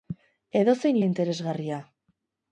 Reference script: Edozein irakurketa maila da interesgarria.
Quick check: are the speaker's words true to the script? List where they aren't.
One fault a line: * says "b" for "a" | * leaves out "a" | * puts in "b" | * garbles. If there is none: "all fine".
* leaves out "irakurketa maila"